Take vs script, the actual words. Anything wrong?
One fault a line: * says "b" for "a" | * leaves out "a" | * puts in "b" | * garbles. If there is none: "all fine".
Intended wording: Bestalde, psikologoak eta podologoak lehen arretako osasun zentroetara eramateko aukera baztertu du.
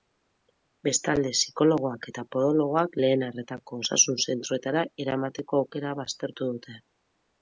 * says "dute" for "du"